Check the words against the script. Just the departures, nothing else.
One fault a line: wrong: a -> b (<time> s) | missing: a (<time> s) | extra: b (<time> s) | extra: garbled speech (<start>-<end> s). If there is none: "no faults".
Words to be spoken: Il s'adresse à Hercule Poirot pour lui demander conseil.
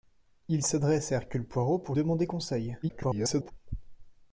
missing: lui (1.9 s)
extra: garbled speech (2.8-3.5 s)